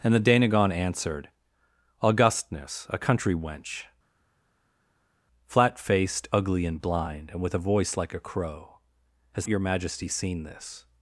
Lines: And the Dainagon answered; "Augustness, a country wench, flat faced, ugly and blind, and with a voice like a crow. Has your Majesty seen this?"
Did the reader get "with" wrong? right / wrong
right